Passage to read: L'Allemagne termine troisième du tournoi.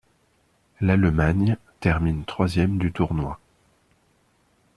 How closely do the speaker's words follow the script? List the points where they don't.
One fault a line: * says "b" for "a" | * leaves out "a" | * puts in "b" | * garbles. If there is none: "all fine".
all fine